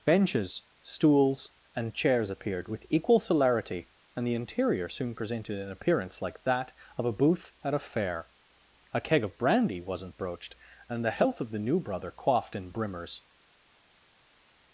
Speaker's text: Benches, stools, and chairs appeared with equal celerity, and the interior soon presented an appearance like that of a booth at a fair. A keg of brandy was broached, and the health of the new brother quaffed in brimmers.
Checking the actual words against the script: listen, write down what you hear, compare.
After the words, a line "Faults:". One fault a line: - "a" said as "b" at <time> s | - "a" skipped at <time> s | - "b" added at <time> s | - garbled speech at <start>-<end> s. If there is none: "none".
Benches, stools, and chairs appeared with equal celerity, and the interior soon presented an appearance like that of a booth at a fair. A keg of brandy wasn't broached, and the health of the new brother quaffed in brimmers.
Faults:
- "was" said as "wasn't" at 9.8 s